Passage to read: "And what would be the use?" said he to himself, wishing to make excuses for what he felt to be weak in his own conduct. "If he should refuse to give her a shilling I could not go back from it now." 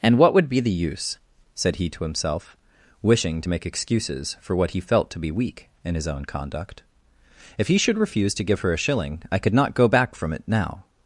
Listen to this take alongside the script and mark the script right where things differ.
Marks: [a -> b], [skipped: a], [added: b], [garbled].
"And what would be the use?" said he to himself, wishing to make excuses for what he felt to be weak in his own conduct. "If he should refuse to give her a shilling I could not go back from it now."